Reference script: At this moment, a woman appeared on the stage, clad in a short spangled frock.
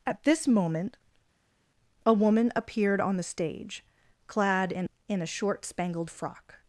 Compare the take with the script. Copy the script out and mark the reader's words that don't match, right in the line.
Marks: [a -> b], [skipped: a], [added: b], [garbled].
At this moment, a woman appeared on the stage, clad in [added: in] a short spangled frock.